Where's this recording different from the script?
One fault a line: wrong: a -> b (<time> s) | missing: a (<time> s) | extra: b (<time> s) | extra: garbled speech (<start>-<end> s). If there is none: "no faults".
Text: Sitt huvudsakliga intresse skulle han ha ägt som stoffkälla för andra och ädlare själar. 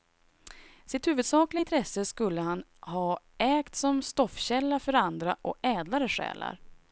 no faults